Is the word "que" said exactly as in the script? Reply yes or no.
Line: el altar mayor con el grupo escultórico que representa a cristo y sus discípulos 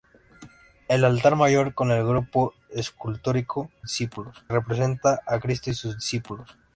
no